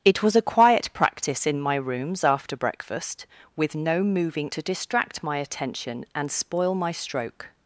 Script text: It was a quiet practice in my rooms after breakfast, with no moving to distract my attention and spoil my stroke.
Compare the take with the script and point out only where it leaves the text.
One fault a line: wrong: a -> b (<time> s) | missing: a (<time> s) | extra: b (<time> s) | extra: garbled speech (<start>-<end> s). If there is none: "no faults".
no faults